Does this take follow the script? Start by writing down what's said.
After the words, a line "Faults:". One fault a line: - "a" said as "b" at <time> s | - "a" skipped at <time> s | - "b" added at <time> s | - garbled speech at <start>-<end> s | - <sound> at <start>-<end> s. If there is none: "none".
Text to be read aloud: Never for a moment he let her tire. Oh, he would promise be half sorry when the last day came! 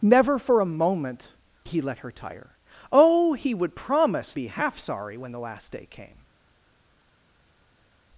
Never for a moment he let her tire. Oh, he would promise be half sorry when the last day came!
Faults:
none